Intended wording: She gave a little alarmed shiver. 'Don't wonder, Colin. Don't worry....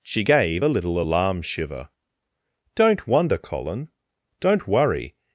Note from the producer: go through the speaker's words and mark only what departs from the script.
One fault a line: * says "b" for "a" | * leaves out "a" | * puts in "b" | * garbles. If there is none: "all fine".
* says "alarm" for "alarmed"